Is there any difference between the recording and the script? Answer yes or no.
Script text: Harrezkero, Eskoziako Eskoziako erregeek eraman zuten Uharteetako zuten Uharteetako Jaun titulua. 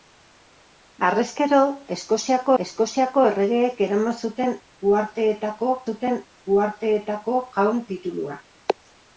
no